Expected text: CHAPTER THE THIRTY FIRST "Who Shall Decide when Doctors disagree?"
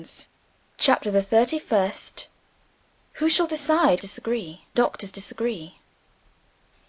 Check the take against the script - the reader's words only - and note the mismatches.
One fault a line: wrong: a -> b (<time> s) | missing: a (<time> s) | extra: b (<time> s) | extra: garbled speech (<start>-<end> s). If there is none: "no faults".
wrong: when -> disagree (4.0 s)